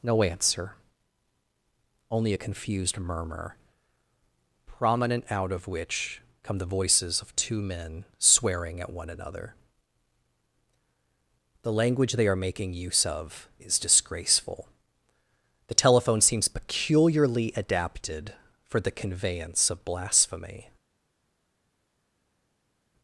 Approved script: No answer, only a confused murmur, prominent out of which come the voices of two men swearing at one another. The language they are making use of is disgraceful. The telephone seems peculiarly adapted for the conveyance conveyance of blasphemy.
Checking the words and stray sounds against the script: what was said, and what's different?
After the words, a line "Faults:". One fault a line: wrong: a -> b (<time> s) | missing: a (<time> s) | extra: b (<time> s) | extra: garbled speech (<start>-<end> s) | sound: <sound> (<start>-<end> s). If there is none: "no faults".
No answer, only a confused murmur, prominent out of which come the voices of two men swearing at one another. The language they are making use of is disgraceful. The telephone seems peculiarly adapted for the conveyance of blasphemy.
Faults:
missing: conveyance (19.7 s)